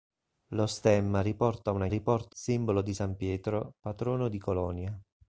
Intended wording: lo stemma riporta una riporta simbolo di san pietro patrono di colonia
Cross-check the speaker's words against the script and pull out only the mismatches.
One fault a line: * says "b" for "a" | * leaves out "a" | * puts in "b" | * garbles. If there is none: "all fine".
all fine